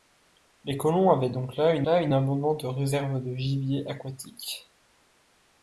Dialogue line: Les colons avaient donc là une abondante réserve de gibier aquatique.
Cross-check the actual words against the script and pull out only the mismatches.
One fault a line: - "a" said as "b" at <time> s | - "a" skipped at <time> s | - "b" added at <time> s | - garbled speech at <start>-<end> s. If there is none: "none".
- "là une" added at 1.8 s